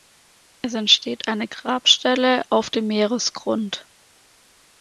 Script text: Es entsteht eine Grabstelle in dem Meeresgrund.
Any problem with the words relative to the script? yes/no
yes